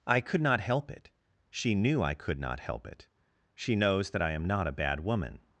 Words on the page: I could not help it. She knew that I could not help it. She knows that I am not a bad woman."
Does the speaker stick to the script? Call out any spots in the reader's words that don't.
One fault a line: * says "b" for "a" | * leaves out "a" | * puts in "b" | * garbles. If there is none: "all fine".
* leaves out "that"